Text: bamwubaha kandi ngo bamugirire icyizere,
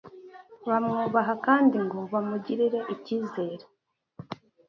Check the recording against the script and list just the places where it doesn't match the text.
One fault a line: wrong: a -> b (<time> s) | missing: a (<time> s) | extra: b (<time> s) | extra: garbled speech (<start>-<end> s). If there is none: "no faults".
no faults